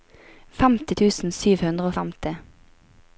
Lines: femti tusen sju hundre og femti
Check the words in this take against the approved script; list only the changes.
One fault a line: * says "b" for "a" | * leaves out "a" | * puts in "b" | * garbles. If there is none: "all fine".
all fine